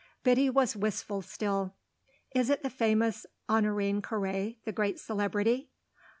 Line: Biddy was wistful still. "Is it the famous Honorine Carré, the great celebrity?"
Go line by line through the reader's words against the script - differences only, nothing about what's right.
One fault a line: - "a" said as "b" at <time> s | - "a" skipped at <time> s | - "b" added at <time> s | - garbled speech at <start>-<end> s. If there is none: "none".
none